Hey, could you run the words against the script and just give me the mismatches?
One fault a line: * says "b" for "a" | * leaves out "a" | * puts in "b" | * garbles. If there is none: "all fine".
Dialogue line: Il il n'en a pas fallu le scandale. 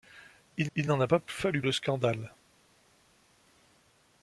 all fine